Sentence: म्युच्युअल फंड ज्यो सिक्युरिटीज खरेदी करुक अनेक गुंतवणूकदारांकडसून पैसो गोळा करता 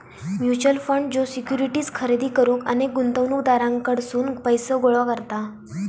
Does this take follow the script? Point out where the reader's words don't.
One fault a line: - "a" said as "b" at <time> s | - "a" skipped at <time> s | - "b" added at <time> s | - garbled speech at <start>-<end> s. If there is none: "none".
none